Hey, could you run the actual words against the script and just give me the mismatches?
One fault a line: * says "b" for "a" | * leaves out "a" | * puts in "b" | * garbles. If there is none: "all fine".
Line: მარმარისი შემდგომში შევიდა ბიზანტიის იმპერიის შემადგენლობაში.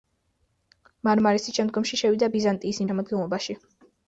* leaves out "იმპერიის"